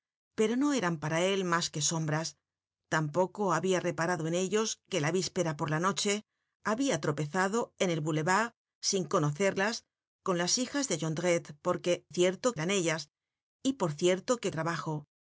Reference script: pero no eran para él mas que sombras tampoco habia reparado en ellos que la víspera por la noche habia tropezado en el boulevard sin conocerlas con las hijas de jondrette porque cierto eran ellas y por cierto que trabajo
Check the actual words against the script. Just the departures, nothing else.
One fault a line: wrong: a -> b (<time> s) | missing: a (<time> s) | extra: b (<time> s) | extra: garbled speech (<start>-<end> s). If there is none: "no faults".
no faults